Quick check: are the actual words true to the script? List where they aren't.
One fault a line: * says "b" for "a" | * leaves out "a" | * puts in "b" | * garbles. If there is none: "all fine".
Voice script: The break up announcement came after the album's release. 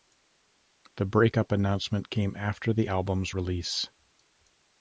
all fine